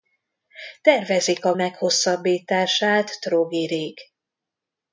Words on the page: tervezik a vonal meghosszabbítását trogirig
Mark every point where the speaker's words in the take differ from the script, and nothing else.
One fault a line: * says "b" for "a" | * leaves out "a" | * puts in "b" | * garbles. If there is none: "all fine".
* leaves out "vonal"